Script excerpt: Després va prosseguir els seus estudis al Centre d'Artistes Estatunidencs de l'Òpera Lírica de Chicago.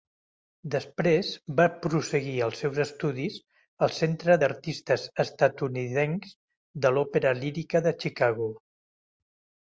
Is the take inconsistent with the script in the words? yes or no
no